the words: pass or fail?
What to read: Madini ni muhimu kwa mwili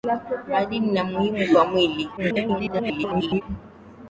fail